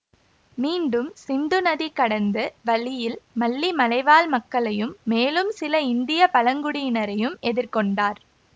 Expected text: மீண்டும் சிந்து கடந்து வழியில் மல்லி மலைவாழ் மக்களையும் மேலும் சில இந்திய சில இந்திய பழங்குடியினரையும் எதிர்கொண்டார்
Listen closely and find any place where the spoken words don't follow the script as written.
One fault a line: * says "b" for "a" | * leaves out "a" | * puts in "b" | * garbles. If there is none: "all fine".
* puts in "நதி"
* leaves out "சில இந்திய"